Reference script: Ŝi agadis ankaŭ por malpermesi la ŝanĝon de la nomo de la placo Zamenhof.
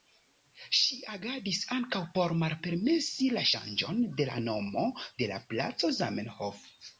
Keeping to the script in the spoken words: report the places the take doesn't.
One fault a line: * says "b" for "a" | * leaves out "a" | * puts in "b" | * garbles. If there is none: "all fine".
all fine